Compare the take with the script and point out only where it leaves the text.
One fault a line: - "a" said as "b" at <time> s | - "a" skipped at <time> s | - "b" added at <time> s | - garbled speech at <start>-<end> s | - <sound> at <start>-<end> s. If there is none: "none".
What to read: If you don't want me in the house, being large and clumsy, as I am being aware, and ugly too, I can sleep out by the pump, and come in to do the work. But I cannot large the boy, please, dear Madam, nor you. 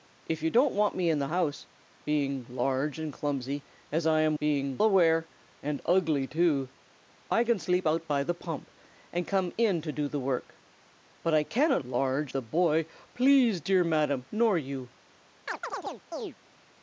- chirp at 15.5-16.4 s